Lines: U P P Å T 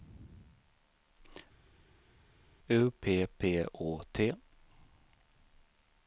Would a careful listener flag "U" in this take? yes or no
no